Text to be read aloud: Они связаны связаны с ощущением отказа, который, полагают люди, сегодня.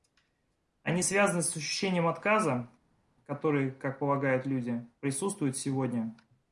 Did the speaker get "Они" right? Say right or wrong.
right